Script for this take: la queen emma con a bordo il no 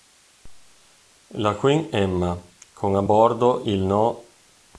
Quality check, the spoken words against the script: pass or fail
pass